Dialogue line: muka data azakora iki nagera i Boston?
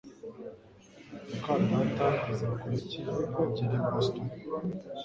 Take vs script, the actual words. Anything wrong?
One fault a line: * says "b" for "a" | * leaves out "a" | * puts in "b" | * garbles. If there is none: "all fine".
all fine